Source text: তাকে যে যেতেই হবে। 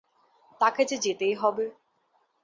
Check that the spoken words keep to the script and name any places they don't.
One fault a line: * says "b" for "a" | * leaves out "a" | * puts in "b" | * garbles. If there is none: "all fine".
all fine